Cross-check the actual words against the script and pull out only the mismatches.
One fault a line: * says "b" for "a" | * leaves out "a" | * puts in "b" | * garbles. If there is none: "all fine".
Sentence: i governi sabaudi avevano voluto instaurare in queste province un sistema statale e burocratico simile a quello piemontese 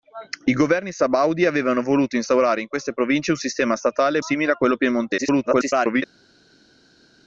* leaves out "burocratico"
* garbles